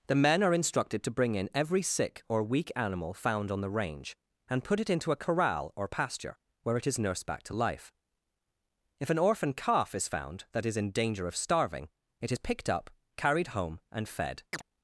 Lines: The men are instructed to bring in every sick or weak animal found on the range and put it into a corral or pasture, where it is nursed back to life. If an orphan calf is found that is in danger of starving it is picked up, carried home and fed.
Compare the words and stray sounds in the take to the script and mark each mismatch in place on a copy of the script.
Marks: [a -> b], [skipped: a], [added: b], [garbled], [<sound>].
The men are instructed to bring in every sick or weak animal found on the range and put it into a corral or pasture, where it is nursed back to life. If an orphan calf is found that is in danger of starving it is picked up, carried home and fed. [chirp]